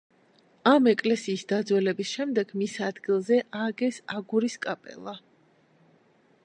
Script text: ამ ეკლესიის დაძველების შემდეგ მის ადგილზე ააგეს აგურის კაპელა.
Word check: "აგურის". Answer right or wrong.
right